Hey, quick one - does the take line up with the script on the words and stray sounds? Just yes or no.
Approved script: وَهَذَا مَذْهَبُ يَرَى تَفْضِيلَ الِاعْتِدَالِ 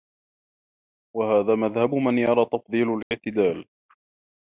no